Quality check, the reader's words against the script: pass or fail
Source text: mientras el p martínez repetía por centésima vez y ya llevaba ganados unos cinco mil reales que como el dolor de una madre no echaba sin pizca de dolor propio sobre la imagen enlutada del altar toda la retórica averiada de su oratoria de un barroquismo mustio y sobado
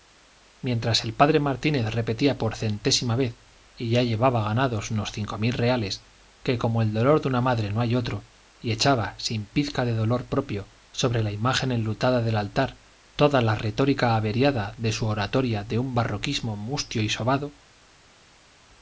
fail